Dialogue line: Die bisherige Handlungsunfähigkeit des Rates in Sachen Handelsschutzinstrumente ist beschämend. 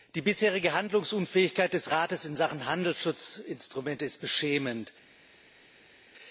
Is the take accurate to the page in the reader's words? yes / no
yes